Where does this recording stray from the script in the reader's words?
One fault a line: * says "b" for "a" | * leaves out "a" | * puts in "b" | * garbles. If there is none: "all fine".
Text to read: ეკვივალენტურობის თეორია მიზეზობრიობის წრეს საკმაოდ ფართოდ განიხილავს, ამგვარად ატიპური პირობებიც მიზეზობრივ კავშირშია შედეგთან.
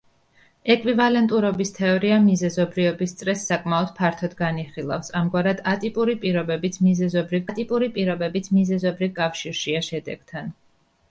* puts in "ატიპური პირობებიც მიზეზობრივ"